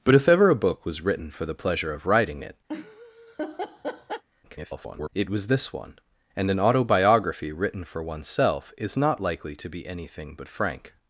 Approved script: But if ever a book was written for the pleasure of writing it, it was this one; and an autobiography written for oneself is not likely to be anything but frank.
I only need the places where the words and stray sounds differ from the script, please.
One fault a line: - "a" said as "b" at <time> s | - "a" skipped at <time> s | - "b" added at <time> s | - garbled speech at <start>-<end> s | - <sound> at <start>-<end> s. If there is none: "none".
- laugh at 2.7-4.2 s
- garbled speech at 4.4-5.1 s